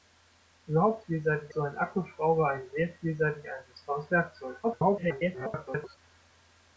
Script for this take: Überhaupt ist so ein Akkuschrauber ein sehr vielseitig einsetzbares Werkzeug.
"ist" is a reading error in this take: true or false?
true